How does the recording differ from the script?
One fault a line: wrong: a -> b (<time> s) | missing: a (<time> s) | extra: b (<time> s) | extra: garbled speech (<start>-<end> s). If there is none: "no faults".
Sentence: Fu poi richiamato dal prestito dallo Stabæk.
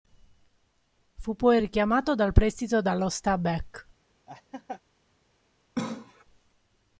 no faults